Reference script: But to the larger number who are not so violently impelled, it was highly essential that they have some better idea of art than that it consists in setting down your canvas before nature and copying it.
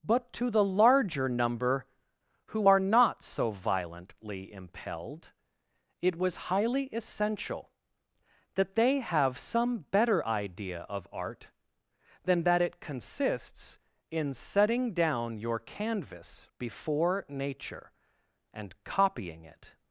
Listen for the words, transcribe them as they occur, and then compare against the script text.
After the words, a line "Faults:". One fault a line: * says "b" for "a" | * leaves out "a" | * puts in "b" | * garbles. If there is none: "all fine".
But to the larger number who are not so violently impelled, it was highly essential that they have some better idea of art than that it consists in setting down your canvas before nature and copying it.
Faults:
all fine